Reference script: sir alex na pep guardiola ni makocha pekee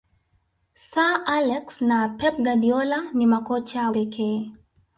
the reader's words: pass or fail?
pass